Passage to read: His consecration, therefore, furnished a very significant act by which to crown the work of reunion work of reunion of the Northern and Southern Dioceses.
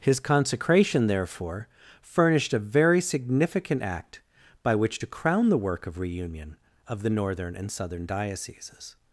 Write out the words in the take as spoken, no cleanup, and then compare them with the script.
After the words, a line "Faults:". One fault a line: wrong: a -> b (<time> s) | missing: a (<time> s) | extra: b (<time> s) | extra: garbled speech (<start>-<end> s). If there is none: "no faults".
His consecration, therefore, furnished a very significant act by which to crown the work of reunion of the Northern and Southern Dioceses.
Faults:
missing: work of reunion (6.6 s)